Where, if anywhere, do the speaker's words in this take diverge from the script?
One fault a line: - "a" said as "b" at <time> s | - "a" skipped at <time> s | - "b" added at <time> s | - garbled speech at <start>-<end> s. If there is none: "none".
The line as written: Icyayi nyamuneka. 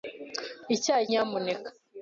none